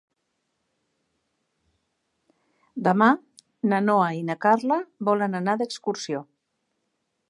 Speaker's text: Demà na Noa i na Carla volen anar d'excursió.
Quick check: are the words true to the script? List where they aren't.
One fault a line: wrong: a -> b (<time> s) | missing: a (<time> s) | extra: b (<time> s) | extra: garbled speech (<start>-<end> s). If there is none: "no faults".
no faults